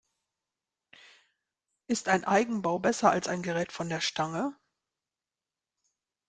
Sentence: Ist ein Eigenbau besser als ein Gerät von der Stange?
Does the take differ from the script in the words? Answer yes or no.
no